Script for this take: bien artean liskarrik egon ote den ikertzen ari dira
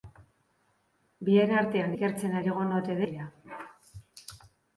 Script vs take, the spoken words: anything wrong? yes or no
yes